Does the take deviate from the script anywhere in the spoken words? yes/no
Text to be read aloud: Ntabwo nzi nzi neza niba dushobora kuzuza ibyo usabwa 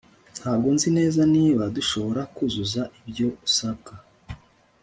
yes